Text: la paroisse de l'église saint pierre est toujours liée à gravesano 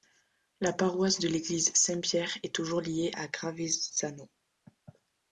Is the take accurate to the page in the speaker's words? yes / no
yes